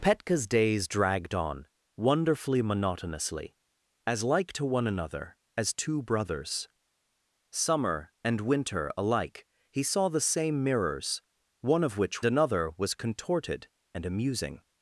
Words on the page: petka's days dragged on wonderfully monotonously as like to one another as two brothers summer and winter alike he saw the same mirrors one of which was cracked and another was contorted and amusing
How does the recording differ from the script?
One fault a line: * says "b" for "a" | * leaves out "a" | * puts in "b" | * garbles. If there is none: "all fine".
* leaves out "was cracked and"